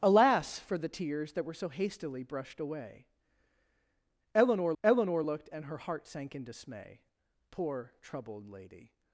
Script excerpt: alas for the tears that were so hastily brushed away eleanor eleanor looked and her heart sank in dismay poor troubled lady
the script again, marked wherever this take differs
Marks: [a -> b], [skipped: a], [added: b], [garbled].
alas for the tears that were so hastily brushed away eleanor eleanor looked and her heart sank in dismay poor troubled lady